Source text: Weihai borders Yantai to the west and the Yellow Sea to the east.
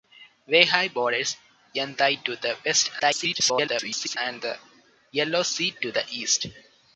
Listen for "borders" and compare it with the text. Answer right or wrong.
right